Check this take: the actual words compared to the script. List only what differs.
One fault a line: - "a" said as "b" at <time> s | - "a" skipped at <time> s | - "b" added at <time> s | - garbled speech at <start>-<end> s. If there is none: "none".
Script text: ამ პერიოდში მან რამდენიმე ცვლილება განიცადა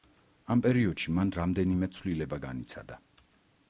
none